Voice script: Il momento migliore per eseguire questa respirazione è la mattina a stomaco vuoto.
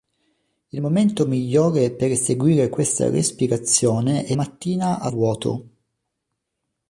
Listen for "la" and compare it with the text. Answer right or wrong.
wrong